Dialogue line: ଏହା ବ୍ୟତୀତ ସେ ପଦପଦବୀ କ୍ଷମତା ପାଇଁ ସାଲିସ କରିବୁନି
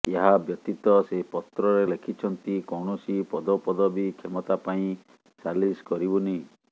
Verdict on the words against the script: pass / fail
fail